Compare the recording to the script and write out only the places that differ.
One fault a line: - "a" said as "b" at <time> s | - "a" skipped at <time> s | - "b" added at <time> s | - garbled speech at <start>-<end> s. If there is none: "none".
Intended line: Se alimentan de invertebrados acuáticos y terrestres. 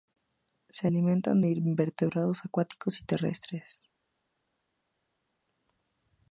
none